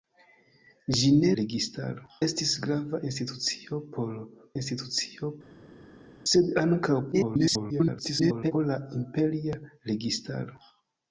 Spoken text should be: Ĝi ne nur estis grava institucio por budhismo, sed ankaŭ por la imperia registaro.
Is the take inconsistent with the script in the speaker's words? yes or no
yes